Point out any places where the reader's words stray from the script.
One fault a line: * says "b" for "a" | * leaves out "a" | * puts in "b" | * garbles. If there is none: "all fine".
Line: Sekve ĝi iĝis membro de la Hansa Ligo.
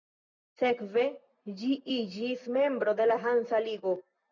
all fine